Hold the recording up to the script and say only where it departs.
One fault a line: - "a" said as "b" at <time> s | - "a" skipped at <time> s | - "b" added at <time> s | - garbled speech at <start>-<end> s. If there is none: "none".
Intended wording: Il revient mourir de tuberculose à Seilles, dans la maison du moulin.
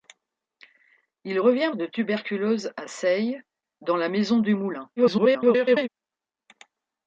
- "mourir" skipped at 1.7 s
- garbled speech at 5.0-5.9 s